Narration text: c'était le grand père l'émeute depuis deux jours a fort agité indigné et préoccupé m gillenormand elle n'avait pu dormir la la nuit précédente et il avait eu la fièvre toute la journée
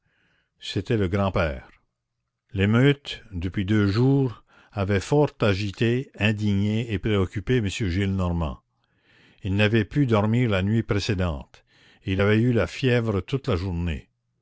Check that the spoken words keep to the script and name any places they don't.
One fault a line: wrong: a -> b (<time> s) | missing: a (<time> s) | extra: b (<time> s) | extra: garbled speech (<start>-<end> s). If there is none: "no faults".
wrong: a -> avait (4.7 s)
wrong: elle -> il (9.4 s)
missing: la (10.6 s)